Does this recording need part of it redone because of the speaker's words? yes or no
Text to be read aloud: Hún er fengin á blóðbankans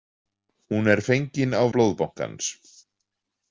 no